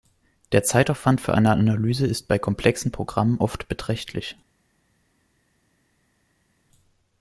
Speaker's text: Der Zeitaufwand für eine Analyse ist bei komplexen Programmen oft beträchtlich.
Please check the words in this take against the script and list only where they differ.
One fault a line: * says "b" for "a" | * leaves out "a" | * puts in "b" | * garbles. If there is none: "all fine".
all fine